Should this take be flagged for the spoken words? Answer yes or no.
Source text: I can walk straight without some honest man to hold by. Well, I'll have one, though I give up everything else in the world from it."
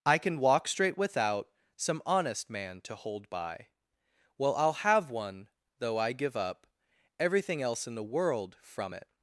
no